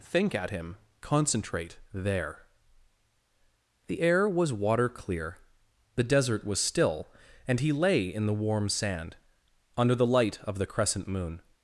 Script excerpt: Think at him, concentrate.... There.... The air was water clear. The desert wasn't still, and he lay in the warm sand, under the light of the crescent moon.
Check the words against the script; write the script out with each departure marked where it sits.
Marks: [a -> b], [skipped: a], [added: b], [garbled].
Think at him, concentrate.... There.... The air was water clear. The desert [wasn't -> was] still, and he lay in the warm sand, under the light of the crescent moon.